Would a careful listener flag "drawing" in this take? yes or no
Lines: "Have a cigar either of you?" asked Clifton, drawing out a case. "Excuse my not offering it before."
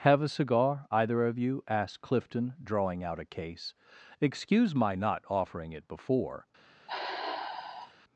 no